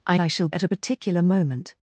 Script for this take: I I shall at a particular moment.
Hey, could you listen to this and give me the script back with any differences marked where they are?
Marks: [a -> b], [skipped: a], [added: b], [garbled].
I I shall at a particular moment.